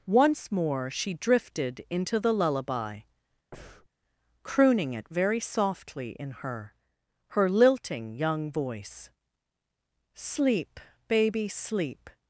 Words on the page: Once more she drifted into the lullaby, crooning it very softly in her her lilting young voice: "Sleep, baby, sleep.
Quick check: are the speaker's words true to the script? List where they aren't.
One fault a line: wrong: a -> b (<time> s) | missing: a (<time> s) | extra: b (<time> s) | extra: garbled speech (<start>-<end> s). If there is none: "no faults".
no faults